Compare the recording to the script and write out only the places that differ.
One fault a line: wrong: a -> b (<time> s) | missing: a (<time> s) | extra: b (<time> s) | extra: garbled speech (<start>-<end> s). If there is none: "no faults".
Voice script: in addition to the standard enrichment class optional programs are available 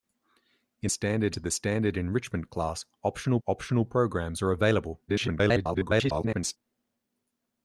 wrong: addition -> standard (0.9 s)
extra: optional (3.5 s)
extra: garbled speech (5.1-6.6 s)